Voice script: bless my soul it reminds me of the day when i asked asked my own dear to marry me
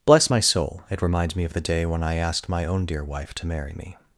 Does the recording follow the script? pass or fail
fail